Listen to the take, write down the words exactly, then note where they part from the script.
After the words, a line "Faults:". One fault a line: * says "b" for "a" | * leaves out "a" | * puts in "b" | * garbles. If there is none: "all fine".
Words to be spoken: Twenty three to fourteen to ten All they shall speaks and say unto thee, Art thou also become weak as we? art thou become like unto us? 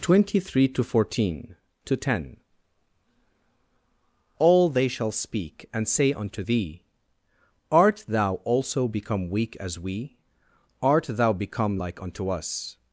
Twenty three to fourteen to ten All they shall speak and say unto thee, Art thou also become weak as we? art thou become like unto us?
Faults:
* says "speak" for "speaks"